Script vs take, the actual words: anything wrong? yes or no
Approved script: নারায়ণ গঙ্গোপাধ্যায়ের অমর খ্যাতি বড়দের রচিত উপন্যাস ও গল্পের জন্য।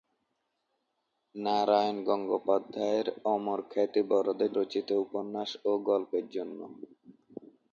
no